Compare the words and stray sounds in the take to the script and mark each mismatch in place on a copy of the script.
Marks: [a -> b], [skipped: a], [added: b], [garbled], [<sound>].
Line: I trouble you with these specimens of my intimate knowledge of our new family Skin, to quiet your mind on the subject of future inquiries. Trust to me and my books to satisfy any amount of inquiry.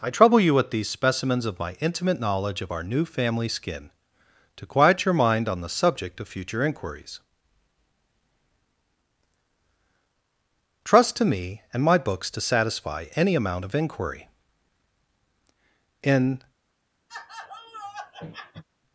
I trouble you with these specimens of my intimate knowledge of our new family Skin, to quiet your mind on the subject of future inquiries. Trust to me and my books to satisfy any amount of inquiry. [added: In] [laugh]